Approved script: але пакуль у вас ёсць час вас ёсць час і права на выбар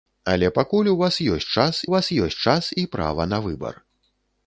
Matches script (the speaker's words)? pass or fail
pass